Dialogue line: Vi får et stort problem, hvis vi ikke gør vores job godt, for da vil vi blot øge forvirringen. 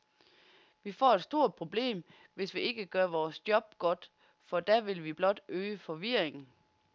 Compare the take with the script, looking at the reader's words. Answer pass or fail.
pass